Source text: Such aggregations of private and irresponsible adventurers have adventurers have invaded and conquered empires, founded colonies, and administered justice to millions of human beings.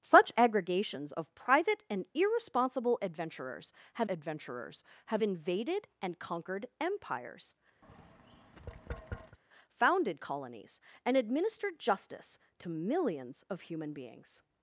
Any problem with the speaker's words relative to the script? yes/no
no